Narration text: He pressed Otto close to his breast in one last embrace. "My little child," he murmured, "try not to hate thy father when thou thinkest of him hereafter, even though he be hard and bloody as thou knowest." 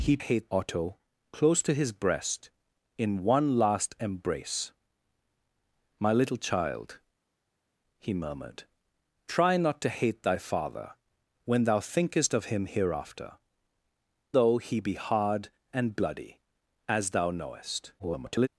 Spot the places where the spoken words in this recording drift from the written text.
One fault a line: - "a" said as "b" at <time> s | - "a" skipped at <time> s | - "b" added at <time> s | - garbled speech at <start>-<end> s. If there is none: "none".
- "pressed" said as "hate" at 0.2 s
- "even" skipped at 13.4 s
- garbled speech at 18.0-18.5 s